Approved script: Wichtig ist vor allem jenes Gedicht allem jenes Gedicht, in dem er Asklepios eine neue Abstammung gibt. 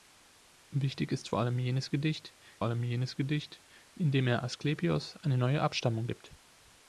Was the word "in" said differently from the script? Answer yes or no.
no